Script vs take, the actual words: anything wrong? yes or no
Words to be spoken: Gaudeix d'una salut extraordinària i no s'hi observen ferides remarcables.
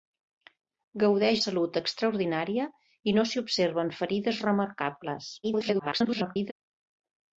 yes